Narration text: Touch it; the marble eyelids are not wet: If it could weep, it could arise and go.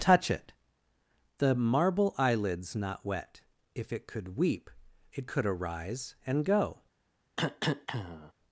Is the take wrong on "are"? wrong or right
wrong